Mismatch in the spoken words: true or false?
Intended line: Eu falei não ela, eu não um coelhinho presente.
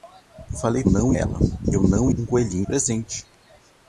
false